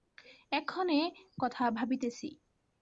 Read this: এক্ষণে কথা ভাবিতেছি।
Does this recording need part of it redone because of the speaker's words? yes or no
no